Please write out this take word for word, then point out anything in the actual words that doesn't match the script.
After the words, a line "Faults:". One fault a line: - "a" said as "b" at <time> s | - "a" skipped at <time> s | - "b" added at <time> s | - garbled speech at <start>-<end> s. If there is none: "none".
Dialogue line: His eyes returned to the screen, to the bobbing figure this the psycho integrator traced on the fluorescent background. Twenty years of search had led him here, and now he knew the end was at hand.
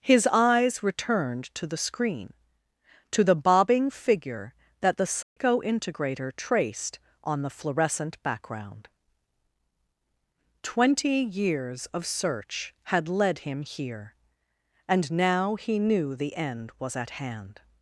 His eyes returned to the screen, to the bobbing figure that the psycho integrator traced on the fluorescent background. Twenty years of search had led him here, and now he knew the end was at hand.
Faults:
- "this" said as "that" at 4.8 s